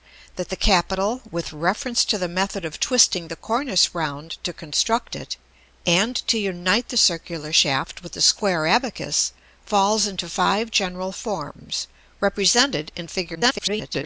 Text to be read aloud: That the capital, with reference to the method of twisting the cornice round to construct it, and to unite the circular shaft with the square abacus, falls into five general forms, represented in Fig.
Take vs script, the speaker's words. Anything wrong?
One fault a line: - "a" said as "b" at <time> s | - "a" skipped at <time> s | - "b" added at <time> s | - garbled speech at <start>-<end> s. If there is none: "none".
- garbled speech at 13.3-14.0 s